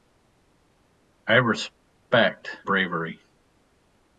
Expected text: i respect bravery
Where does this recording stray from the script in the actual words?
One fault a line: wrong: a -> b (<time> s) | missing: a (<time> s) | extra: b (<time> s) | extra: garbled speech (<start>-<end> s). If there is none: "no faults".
no faults